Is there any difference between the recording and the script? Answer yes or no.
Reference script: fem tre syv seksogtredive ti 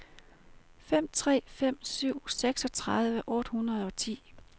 yes